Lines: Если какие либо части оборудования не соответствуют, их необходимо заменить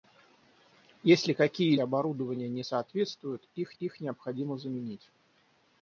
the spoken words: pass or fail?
fail